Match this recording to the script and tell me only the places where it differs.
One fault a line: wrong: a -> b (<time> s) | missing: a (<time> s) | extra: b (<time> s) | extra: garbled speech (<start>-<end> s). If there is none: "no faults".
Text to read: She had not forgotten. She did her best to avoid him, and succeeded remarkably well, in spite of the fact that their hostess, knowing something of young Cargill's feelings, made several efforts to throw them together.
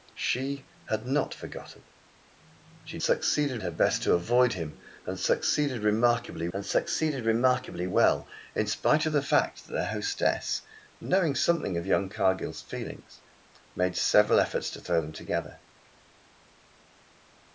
wrong: did -> succeeded (3.0 s)
extra: and succeeded remarkably (6.5 s)